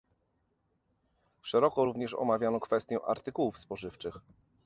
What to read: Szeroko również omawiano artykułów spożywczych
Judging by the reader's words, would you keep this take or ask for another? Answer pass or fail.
fail